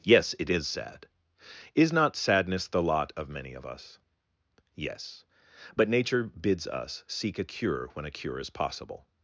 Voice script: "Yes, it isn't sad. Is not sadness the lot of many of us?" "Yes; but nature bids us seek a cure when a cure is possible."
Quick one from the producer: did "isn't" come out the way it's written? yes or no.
no